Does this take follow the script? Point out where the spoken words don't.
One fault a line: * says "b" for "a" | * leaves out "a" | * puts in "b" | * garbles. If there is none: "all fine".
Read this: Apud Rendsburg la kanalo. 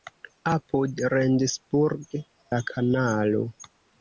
all fine